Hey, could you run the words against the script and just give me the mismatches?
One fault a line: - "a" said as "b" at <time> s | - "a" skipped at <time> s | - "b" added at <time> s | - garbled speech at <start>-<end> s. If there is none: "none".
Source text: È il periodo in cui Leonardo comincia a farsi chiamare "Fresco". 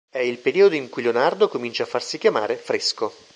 none